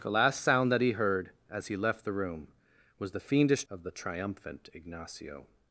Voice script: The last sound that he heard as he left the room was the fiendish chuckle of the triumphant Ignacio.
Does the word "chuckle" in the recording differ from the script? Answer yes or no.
yes